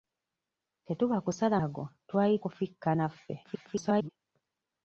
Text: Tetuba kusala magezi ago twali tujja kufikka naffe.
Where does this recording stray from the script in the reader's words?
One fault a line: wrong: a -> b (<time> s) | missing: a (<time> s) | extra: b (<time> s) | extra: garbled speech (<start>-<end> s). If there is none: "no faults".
missing: magezi (1.6 s)
missing: tujja (2.3 s)
extra: garbled speech (3.4-4.1 s)